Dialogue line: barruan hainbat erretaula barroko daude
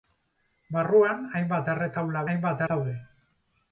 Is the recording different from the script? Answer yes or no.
yes